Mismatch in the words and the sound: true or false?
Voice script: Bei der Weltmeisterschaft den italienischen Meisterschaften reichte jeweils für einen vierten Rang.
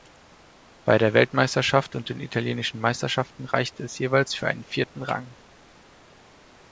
true